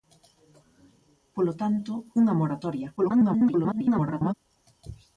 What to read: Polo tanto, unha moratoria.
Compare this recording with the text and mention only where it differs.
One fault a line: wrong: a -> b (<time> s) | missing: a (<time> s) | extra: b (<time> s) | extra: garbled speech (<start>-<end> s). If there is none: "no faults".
extra: garbled speech (3.0-4.3 s)